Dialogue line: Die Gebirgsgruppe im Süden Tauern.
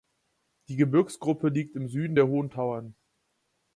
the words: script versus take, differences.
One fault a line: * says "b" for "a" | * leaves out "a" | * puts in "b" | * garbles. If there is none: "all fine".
* puts in "liegt"
* puts in "der Hohen"